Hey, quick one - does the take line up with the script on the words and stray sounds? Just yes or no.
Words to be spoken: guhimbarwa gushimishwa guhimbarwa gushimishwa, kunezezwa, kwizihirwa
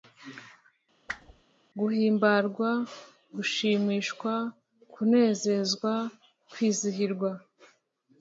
no